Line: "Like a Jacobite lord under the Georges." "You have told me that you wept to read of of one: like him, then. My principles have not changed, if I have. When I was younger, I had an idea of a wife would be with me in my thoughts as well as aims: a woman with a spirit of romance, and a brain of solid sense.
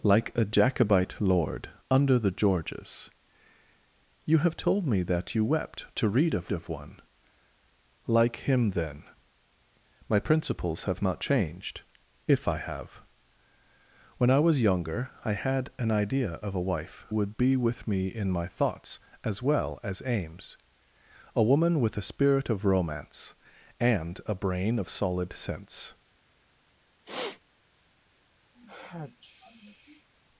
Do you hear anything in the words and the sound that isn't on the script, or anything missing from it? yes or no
yes